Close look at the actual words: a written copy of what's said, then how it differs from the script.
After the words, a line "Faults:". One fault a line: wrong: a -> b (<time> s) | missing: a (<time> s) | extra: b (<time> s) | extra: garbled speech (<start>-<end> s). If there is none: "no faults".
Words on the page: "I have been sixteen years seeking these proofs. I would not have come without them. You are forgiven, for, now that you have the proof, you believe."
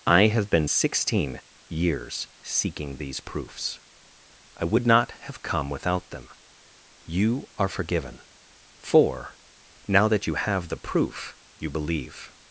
"I have been sixteen years seeking these proofs. I would not have come without them. You are forgiven, for, now that you have the proof, you believe."
Faults:
no faults